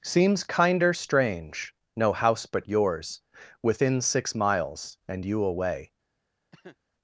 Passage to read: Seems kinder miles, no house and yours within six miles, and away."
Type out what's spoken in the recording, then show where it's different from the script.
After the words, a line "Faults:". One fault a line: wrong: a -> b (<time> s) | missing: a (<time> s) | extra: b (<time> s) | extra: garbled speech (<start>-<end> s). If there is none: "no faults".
Seems kinder strange, no house but yours within six miles, and you away."
Faults:
wrong: miles -> strange (0.9 s)
wrong: and -> but (2.4 s)
extra: you (5.3 s)